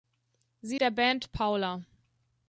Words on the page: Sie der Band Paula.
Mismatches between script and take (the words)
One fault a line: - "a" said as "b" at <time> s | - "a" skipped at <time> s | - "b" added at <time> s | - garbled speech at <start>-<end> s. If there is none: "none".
none